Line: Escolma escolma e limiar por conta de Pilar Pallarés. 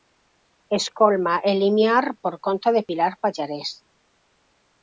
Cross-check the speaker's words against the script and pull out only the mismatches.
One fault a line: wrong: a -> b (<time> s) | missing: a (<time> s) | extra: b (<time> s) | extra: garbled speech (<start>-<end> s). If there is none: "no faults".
missing: escolma (1.4 s)